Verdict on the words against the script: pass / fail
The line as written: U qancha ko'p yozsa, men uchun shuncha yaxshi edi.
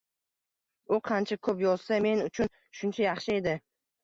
pass